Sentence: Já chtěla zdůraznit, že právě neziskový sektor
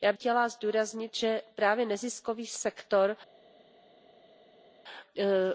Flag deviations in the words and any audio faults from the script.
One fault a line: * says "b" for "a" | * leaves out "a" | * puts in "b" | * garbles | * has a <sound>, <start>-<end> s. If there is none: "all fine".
all fine